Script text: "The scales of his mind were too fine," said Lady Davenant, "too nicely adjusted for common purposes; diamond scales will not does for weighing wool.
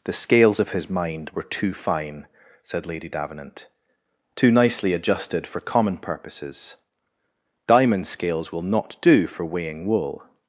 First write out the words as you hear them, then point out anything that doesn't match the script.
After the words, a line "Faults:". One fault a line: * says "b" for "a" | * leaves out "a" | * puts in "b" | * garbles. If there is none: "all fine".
"The scales of his mind were too fine," said Lady Davenant, "too nicely adjusted for common purposes; diamond scales will not do for weighing wool.
Faults:
* says "do" for "does"